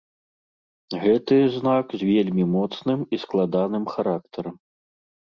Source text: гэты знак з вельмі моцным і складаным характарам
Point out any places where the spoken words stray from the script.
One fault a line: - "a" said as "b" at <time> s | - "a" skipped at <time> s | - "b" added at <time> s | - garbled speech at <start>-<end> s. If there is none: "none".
none